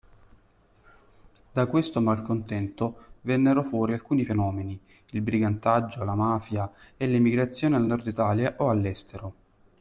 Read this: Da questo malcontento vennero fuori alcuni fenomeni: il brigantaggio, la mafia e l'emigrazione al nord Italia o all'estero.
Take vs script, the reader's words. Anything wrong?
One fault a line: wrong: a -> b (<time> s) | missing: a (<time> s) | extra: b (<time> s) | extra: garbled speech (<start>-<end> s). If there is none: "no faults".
no faults